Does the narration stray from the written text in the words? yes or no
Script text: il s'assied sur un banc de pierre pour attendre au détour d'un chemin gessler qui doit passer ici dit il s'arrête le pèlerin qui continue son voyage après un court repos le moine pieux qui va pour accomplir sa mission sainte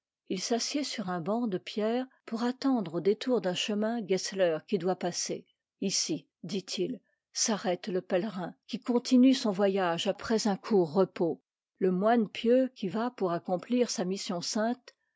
no